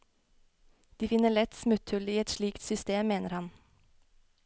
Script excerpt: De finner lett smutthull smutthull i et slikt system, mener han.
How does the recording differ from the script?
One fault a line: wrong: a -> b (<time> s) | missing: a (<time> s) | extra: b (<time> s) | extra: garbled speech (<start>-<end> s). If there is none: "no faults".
missing: smutthull (2.1 s)